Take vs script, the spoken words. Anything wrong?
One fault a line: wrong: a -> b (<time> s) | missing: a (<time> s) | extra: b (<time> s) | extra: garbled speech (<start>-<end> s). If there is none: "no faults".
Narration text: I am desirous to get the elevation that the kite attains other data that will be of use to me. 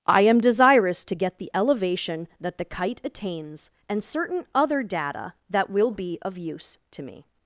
extra: and certain (3.9 s)